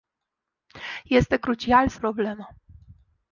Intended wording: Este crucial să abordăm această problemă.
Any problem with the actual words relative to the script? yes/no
yes